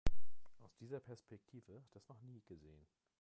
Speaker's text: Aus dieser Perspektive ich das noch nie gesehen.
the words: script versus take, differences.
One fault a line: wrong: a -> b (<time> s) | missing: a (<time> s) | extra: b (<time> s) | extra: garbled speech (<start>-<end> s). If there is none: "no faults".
no faults